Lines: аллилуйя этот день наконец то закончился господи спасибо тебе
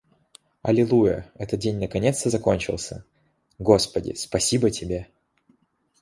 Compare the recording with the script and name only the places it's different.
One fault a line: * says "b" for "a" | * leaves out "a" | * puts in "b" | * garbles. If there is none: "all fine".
all fine